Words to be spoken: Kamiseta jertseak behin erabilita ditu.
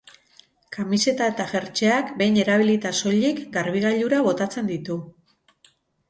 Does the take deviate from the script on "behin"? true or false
false